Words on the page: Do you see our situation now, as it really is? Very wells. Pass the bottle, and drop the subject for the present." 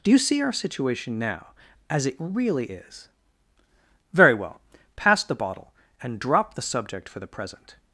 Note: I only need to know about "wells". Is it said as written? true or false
false